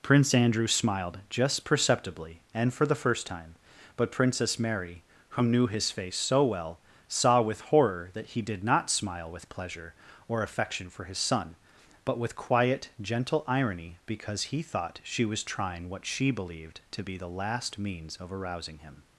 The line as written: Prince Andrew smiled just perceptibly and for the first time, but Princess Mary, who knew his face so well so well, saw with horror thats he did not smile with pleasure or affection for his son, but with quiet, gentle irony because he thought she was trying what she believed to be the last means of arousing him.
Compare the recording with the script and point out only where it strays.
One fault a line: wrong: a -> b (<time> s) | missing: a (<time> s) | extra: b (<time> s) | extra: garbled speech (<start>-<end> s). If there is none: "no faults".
missing: so well (6.8 s)
wrong: thats -> that (8.1 s)